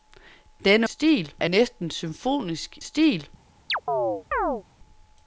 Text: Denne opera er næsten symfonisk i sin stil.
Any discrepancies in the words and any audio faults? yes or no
yes